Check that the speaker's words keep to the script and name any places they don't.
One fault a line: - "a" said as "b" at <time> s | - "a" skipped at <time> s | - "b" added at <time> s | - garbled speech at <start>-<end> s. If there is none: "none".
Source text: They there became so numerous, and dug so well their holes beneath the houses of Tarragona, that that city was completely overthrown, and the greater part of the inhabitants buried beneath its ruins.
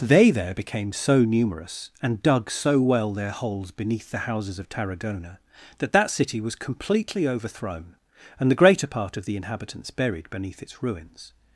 none